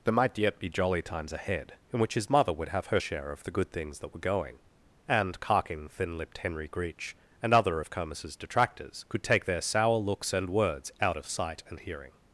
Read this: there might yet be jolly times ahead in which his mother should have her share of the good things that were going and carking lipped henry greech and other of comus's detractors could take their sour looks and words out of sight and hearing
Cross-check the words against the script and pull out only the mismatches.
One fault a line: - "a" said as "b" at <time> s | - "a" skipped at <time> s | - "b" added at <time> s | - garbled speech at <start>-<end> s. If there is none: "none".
- "should" said as "would" at 2.5 s
- "thin" added at 5.9 s